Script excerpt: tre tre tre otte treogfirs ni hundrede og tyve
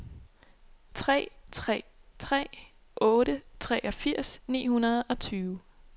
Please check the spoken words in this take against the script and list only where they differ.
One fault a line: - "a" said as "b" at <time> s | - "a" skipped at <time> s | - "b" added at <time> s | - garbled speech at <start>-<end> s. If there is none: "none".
none